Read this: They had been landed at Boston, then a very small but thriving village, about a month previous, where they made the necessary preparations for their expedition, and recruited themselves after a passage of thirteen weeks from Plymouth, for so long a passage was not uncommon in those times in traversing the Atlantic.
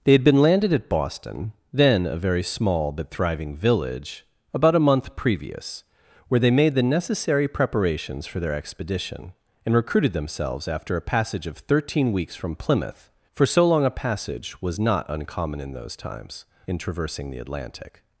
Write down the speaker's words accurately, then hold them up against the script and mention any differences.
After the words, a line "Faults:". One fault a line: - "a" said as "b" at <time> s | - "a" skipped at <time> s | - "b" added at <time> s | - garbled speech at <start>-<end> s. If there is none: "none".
They had been landed at Boston, then a very small but thriving village, about a month previous, where they made the necessary preparations for their expedition, and recruited themselves after a passage of thirteen weeks from Plymouth, for so long a passage was not uncommon in those times in traversing the Atlantic.
Faults:
none